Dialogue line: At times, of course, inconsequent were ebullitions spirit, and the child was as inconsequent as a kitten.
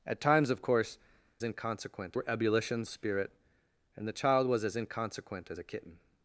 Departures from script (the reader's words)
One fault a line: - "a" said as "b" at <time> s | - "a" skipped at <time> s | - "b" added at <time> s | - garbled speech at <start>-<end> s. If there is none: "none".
none